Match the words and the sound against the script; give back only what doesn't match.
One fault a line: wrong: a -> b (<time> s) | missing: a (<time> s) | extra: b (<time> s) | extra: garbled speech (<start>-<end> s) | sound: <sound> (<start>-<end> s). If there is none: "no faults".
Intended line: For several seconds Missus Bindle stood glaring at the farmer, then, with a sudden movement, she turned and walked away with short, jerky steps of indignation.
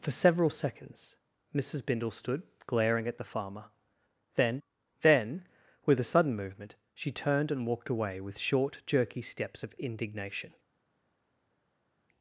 extra: then (5.0 s)